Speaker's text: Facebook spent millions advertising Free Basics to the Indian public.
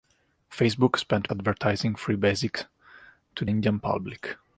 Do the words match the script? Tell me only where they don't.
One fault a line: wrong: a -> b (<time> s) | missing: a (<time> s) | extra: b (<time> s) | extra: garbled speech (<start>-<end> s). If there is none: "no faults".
missing: millions (1.3 s)
missing: the (3.5 s)